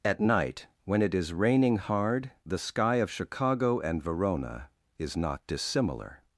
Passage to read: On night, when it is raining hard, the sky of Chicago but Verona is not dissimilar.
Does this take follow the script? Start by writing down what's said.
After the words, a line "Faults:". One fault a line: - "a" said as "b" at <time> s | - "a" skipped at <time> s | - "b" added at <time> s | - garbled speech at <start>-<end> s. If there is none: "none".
At night, when it is raining hard, the sky of Chicago and Verona is not dissimilar.
Faults:
- "On" said as "At" at 0.0 s
- "but" said as "and" at 3.8 s